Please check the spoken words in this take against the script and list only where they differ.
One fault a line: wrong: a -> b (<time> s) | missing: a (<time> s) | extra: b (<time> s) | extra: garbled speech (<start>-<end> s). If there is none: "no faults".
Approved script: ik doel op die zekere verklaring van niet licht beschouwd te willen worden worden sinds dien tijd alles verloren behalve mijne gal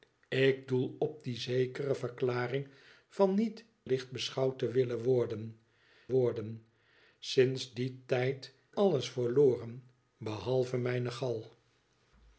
no faults